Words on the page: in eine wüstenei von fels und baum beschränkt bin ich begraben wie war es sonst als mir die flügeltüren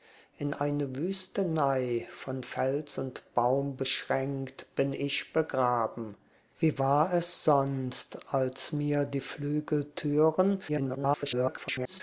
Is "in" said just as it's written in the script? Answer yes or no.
yes